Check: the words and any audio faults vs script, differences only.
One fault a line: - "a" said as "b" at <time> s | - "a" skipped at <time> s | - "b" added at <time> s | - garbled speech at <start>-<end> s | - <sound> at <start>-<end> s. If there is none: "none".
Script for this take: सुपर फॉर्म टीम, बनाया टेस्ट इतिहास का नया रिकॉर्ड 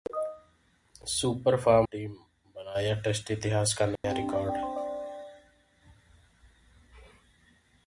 - dropout at 4.0-4.0 s